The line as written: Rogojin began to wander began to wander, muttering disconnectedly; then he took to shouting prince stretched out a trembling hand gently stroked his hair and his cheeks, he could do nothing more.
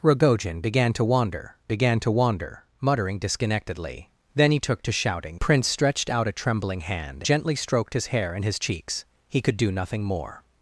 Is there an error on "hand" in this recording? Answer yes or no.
no